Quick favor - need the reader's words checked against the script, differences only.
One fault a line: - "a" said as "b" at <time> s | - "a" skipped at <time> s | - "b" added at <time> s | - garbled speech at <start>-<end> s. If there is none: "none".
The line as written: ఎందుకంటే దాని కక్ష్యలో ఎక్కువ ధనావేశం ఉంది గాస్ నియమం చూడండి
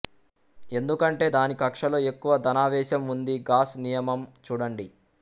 none